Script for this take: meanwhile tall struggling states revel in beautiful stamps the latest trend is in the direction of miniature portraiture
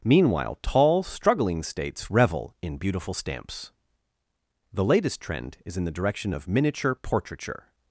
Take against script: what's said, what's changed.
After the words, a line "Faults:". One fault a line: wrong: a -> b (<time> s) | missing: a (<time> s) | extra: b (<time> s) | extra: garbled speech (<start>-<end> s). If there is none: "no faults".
meanwhile tall struggling states revel in beautiful stamps the latest trend is in the direction of miniature portraiture
Faults:
no faults